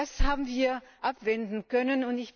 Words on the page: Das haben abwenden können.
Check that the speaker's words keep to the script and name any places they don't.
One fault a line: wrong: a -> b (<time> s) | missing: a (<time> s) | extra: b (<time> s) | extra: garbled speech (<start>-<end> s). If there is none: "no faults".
extra: wir (0.5 s)